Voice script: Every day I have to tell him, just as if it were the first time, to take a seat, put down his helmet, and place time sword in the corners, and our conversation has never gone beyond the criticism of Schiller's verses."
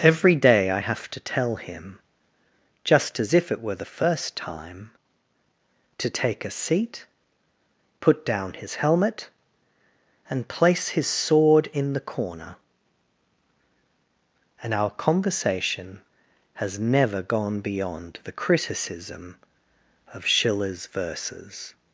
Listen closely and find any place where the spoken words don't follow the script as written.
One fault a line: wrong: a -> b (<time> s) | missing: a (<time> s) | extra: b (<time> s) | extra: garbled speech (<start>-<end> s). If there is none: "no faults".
wrong: time -> his (10.9 s)
wrong: corners -> corner (12.0 s)